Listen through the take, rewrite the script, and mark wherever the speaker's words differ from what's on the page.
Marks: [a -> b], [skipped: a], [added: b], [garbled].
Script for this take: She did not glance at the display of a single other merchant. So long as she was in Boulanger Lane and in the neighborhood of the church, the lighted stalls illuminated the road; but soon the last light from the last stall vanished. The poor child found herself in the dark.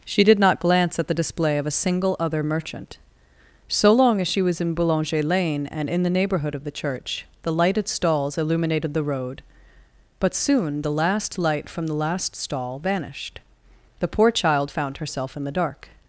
She did not glance at the display of a single other merchant. So long as she was in Boulanger Lane and in the neighborhood of the church, the lighted stalls illuminated the road; but soon the last light from the last stall vanished. The poor child found herself in the dark.